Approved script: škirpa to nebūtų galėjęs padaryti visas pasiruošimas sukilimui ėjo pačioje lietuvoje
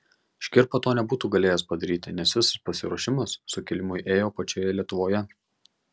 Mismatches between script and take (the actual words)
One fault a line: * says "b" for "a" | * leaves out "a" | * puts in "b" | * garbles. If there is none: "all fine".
* puts in "nes"